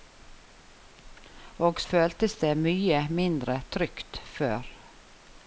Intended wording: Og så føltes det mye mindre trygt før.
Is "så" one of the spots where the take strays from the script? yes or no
yes